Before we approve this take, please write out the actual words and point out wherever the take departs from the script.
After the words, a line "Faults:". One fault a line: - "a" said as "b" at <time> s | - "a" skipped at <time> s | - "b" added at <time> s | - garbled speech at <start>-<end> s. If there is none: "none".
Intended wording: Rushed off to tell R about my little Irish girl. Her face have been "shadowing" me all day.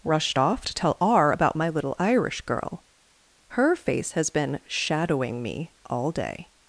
Rushed off to tell R about my little Irish girl. Her face has been "shadowing" me all day.
Faults:
- "have" said as "has" at 4.1 s